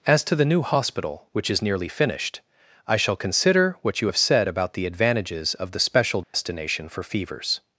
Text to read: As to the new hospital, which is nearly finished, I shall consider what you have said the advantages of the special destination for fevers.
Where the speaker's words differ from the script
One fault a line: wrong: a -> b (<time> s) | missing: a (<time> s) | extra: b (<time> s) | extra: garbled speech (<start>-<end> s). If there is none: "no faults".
extra: about (4.5 s)